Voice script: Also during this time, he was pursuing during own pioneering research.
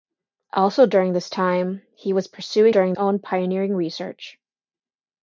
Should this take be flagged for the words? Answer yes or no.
no